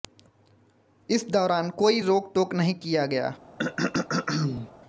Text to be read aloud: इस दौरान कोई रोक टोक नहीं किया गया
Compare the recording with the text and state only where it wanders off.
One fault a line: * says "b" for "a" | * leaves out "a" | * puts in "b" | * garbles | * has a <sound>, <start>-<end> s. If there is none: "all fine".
* has a throat clearing, 3.6-4.7 s